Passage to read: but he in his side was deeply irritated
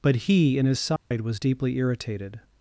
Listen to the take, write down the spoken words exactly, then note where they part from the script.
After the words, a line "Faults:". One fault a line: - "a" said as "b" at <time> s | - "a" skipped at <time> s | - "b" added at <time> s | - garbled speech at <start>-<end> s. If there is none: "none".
but he in his side was deeply irritated
Faults:
none